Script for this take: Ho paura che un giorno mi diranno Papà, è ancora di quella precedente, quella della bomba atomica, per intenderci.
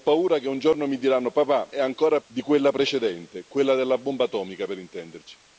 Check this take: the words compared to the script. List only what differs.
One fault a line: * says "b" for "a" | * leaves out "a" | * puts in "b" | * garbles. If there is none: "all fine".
all fine